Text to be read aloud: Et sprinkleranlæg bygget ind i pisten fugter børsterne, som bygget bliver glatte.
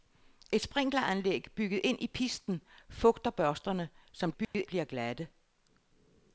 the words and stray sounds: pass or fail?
fail